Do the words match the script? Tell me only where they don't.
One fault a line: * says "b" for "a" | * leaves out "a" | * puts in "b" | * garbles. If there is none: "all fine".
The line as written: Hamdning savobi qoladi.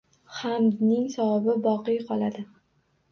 * puts in "boqiy"